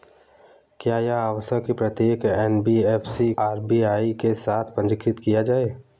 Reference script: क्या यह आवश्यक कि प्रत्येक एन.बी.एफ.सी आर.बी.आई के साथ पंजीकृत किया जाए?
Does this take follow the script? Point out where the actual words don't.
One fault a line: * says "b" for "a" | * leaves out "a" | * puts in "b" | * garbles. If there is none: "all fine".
all fine